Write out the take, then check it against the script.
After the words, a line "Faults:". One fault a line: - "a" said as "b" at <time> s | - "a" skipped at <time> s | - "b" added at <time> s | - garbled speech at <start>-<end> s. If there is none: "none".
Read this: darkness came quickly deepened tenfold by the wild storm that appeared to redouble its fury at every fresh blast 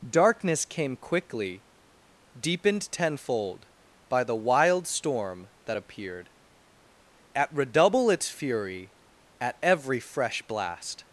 darkness came quickly deepened tenfold by the wild storm that appeared at redouble its fury at every fresh blast
Faults:
- "to" said as "at" at 7.3 s